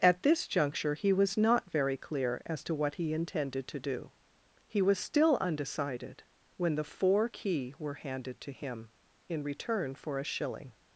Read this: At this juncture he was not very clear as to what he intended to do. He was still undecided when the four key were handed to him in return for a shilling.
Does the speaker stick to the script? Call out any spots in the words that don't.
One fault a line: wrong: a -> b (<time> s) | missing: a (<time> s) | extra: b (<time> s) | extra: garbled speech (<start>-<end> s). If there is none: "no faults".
no faults